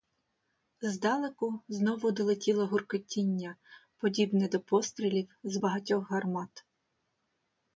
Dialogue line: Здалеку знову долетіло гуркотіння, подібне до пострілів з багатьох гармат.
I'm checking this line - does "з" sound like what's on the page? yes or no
yes